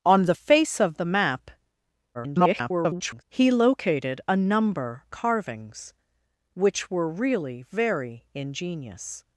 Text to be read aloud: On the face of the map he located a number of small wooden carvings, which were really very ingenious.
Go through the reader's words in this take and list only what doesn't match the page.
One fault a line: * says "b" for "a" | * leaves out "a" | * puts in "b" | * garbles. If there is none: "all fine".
* garbles
* leaves out "of small wooden"